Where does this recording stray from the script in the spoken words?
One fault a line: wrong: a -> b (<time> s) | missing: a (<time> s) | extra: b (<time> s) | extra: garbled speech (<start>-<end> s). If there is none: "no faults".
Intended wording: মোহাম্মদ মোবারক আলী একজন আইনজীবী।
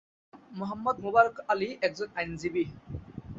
no faults